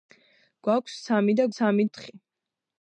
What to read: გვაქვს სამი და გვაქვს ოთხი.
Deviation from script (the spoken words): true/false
true